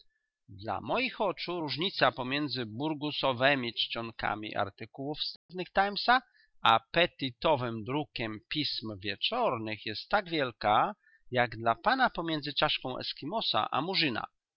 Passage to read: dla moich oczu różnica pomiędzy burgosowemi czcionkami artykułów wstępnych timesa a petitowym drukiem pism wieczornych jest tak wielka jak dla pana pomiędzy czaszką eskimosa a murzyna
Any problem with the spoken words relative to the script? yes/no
no